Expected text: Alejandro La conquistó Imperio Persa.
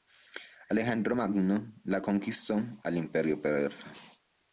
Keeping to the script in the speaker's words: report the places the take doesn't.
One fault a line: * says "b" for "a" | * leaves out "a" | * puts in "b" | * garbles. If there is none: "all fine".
* puts in "Magno"
* puts in "al"